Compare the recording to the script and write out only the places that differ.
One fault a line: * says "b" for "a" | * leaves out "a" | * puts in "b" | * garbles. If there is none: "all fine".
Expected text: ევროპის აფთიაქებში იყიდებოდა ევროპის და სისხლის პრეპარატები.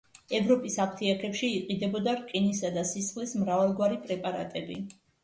* says "რკინისა" for "ევროპის"
* puts in "მრავალგვარი"